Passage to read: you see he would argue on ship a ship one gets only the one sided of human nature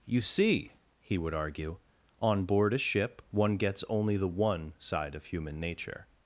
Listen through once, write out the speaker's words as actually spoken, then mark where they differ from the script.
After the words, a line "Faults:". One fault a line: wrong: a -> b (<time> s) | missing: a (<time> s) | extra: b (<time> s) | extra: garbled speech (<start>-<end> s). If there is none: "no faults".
you see he would argue on board a ship one gets only the one side of human nature
Faults:
wrong: ship -> board (2.5 s)
wrong: sided -> side (4.8 s)